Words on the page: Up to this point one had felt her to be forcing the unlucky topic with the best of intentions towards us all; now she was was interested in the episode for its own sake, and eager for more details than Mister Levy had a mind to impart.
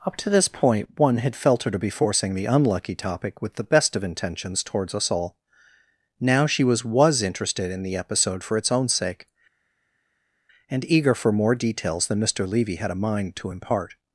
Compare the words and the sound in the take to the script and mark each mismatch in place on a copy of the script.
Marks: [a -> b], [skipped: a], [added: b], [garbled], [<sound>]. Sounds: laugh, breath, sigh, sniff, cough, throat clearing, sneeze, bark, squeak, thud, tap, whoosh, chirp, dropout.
Up to this point one had felt her to be forcing the unlucky topic with the best of intentions towards us all; now she was was interested in the episode for its own sake, and eager for more details than Mister Levy had a mind to impart.